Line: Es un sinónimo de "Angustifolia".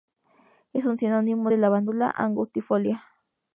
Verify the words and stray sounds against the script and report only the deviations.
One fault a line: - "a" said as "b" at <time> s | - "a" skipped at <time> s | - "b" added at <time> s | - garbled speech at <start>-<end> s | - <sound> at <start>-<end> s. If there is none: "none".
- "Lavandula" added at 1.6 s